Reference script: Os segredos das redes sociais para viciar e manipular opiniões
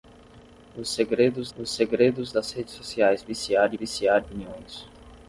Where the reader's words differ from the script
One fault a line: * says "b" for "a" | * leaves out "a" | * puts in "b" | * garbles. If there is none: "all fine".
* puts in "os segredos"
* leaves out "para"
* says "viciar" for "manipular"